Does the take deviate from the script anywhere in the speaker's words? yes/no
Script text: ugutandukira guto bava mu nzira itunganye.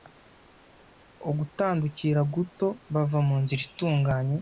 no